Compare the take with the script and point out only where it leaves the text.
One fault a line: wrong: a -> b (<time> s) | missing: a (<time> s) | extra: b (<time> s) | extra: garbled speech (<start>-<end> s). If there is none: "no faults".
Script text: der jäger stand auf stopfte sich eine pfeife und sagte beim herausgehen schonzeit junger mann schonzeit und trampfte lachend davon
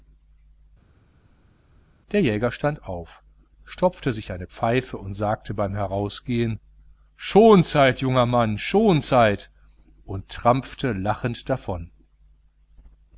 no faults